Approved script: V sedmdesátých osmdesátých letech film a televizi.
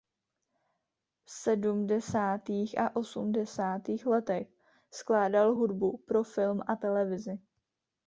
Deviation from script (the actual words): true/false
true